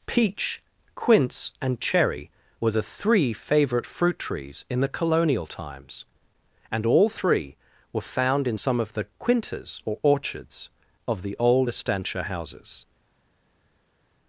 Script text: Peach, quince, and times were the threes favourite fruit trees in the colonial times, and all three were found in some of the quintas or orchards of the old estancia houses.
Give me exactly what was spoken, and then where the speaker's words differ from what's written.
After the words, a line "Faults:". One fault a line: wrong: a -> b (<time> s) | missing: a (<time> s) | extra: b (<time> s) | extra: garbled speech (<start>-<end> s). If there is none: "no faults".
Peach, quince, and cherry were the three favourite fruit trees in the colonial times, and all three were found in some of the quintas or orchards of the old estancia houses.
Faults:
wrong: times -> cherry (1.8 s)
wrong: threes -> three (2.8 s)